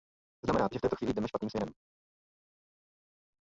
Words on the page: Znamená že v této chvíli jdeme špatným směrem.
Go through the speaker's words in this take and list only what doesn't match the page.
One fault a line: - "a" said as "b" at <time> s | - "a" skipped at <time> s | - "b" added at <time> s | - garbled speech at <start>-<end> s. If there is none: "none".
none